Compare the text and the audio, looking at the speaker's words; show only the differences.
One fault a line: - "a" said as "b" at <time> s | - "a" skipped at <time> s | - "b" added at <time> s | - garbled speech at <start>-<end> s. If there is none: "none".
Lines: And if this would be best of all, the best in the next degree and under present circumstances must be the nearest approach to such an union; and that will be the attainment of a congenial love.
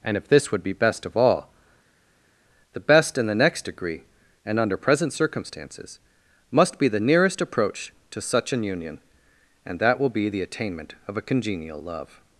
none